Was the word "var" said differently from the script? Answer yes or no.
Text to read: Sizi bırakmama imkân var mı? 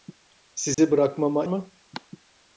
yes